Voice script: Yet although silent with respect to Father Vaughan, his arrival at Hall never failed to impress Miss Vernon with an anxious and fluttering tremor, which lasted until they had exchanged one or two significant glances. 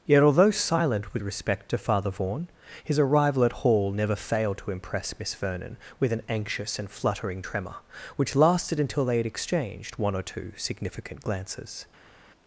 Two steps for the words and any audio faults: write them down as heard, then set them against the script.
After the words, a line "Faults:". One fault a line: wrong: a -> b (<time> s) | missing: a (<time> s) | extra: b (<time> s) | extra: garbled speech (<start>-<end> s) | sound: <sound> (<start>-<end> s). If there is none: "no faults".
Yet although silent with respect to Father Vaughan, his arrival at Hall never failed to impress Miss Vernon with an anxious and fluttering tremor, which lasted until they had exchanged one or two significant glances.
Faults:
no faults